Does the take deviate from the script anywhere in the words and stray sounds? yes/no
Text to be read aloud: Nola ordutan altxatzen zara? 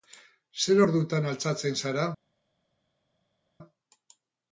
yes